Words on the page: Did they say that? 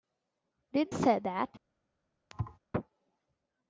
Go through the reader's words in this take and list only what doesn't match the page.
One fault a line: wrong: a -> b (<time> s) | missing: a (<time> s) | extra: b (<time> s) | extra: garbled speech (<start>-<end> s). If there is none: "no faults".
missing: they (0.9 s)